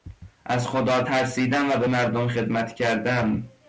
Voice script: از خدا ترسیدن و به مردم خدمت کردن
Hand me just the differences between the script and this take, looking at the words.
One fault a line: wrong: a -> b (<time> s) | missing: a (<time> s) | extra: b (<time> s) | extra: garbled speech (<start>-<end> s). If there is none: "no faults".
no faults